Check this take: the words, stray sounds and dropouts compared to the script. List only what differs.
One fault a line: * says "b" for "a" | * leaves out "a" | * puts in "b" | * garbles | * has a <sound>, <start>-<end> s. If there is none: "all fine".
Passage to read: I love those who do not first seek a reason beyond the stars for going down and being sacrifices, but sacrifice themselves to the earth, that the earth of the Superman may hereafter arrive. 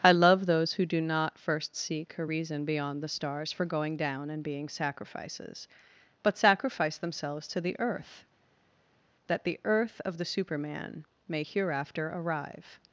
all fine